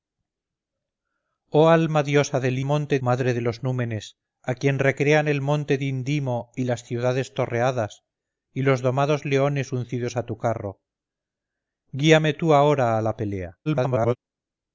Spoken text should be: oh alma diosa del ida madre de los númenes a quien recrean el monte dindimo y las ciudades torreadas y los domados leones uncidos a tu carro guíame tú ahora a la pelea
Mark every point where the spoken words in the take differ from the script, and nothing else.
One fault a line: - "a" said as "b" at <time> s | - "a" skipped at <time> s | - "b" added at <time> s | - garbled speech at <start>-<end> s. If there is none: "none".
- "ida" said as "monte" at 2.6 s
- garbled speech at 13.7-14.2 s